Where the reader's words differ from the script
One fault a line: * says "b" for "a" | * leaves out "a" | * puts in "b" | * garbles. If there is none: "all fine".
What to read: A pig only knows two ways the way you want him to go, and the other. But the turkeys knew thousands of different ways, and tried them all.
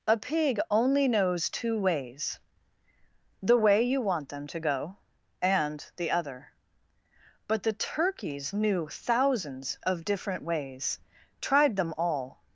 * says "them" for "him"
* leaves out "and"